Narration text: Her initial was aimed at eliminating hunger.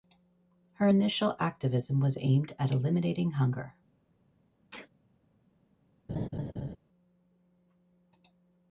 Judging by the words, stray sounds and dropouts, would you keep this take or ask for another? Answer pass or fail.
fail